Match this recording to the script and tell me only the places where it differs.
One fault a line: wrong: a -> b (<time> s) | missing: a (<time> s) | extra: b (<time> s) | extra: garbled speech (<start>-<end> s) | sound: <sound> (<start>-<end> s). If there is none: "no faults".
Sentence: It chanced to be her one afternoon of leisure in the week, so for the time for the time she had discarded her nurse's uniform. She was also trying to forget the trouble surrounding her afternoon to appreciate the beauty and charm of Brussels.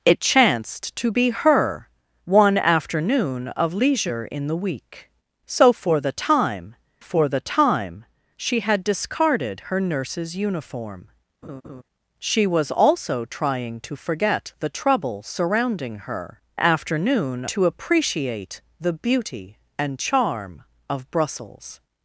sound: laugh (11.4-11.8 s)